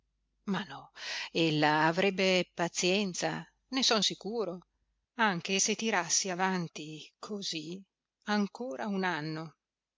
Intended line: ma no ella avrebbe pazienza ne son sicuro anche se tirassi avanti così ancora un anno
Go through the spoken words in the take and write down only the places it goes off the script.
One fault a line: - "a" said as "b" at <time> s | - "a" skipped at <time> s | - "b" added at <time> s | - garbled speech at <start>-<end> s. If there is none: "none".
none